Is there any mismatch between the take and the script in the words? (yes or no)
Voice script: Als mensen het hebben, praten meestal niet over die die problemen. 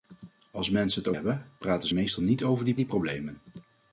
no